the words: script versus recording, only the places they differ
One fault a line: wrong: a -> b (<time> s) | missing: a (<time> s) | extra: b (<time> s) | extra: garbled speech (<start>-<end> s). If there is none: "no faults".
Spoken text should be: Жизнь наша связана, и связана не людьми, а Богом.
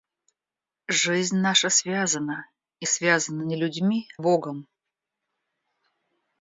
missing: а (4.1 s)